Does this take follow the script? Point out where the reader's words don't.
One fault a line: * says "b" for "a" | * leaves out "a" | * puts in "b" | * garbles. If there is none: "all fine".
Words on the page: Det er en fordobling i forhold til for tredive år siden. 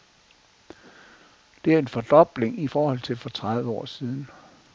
all fine